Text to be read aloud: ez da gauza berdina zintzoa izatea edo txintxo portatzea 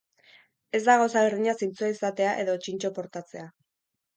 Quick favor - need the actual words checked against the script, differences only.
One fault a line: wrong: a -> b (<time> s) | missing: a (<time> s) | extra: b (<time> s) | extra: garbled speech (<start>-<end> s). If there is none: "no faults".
no faults